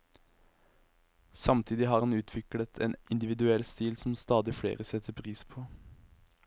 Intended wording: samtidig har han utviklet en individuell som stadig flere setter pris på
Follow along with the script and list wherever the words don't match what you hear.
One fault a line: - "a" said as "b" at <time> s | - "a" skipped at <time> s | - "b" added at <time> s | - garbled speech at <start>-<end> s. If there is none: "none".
- "stil" added at 3.7 s